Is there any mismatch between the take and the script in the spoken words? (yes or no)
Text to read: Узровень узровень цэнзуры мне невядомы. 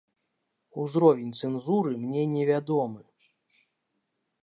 yes